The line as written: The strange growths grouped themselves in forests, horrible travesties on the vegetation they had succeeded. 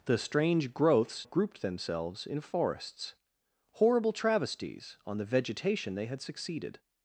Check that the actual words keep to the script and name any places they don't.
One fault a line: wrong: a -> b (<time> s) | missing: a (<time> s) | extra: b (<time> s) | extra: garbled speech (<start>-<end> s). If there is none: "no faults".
no faults